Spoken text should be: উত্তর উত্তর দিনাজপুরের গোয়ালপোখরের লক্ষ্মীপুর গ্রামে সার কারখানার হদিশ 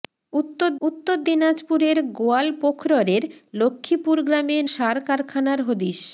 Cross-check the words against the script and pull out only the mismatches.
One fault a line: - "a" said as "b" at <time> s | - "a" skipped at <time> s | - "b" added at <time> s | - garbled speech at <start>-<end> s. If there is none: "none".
none